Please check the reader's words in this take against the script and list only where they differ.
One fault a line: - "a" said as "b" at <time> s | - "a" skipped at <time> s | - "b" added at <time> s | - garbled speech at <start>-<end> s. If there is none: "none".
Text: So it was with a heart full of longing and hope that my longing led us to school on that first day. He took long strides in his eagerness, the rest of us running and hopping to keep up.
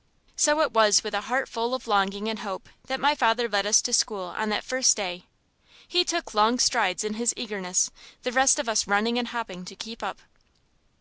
- "longing" said as "father" at 3.1 s